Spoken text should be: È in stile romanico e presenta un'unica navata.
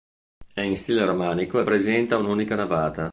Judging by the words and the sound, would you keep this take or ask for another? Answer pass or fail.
pass